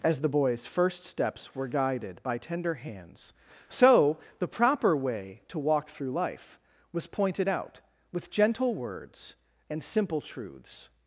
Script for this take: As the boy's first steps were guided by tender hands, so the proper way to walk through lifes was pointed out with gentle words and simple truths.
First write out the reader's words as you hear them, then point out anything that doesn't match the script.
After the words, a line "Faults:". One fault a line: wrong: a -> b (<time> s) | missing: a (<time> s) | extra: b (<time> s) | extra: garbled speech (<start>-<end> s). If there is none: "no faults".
As the boy's first steps were guided by tender hands, so the proper way to walk through life was pointed out with gentle words and simple truths.
Faults:
wrong: lifes -> life (6.1 s)